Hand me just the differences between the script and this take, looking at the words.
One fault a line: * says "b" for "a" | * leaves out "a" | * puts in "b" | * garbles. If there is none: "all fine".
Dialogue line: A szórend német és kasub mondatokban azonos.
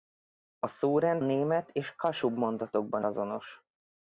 all fine